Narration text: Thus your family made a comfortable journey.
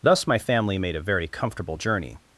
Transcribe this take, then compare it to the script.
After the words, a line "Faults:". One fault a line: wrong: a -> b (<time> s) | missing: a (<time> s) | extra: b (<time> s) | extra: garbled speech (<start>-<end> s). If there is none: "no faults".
Thus my family made a very comfortable journey.
Faults:
wrong: your -> my (0.2 s)
extra: very (1.0 s)